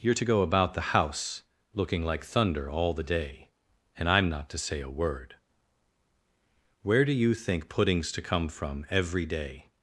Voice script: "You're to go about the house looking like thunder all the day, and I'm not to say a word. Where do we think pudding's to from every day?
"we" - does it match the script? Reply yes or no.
no